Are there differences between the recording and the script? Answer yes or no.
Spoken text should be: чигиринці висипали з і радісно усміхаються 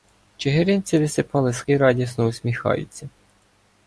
no